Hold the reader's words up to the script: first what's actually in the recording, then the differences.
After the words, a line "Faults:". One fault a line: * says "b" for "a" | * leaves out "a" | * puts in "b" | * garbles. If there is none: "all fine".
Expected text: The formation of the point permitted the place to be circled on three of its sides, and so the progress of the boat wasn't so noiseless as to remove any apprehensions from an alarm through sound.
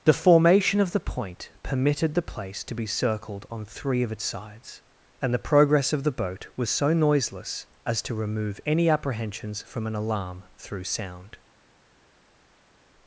The formation of the point permitted the place to be circled on three of its sides, and the progress of the boat was so noiseless as to remove any apprehensions from an alarm through sound.
Faults:
* leaves out "so"
* says "was" for "wasn't"